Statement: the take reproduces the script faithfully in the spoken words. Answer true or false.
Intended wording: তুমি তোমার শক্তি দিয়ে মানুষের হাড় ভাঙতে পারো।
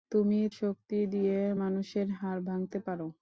false